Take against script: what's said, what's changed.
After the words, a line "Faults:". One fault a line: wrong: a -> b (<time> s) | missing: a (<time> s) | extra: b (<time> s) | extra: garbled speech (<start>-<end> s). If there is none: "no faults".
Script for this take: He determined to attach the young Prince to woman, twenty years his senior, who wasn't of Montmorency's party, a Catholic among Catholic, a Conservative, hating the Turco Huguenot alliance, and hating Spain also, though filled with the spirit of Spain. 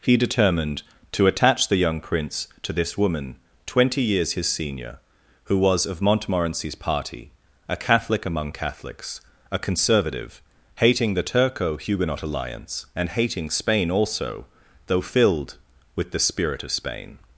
He determined to attach the young Prince to this woman, twenty years his senior, who was of Montmorency's party, a Catholic among Catholics, a Conservative, hating the Turco Huguenot alliance, and hating Spain also, though filled with the spirit of Spain.
Faults:
extra: this (2.7 s)
wrong: wasn't -> was (5.6 s)
wrong: Catholic -> Catholics (8.5 s)